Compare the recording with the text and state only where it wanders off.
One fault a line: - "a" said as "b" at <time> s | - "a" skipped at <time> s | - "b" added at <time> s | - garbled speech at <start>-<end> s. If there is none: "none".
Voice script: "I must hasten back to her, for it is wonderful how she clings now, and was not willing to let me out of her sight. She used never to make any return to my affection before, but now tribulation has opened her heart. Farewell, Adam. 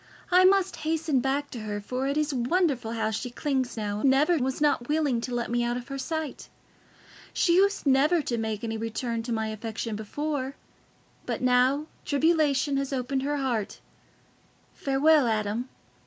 - "and" said as "never" at 4.0 s